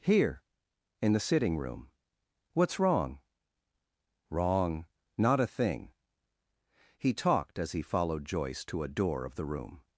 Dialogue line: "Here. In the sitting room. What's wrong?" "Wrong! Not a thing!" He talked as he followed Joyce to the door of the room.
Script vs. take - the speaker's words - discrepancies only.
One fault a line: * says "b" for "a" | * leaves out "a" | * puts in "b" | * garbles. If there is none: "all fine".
* says "a" for "the"